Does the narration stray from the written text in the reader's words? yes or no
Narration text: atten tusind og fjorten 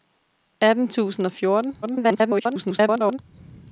yes